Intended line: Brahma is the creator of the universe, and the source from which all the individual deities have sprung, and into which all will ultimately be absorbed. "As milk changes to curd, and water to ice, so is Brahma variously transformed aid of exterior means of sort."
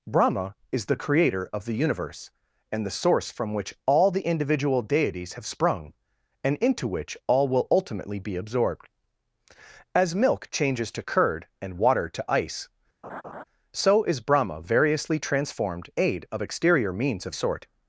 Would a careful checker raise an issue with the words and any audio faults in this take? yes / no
yes